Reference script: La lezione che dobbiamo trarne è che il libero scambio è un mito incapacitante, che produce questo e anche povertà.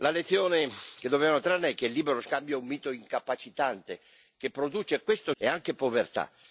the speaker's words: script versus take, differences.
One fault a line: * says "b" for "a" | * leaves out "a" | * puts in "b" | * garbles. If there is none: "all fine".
all fine